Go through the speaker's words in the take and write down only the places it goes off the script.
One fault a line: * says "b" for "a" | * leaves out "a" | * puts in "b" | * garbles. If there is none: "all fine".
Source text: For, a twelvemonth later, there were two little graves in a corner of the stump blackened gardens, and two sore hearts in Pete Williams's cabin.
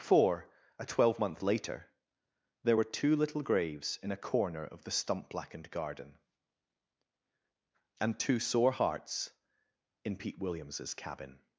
* says "garden" for "gardens"